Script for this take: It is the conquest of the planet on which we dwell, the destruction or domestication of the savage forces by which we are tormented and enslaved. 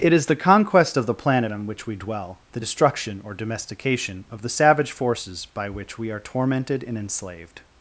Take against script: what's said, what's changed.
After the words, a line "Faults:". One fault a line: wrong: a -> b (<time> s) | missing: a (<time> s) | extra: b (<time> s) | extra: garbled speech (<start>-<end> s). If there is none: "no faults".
It is the conquest of the planet on which we dwell, the destruction or domestication of the savage forces by which we are tormented and enslaved.
Faults:
no faults